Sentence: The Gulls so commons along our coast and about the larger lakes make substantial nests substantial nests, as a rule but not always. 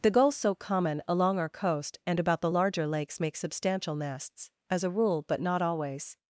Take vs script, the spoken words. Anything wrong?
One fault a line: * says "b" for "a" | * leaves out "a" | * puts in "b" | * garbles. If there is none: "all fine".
* says "common" for "commons"
* leaves out "substantial nests"